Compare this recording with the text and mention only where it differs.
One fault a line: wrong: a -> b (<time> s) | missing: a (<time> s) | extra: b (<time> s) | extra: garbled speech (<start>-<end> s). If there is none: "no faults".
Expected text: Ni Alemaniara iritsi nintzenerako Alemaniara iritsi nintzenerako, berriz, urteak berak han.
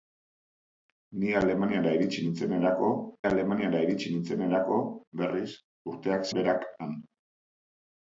no faults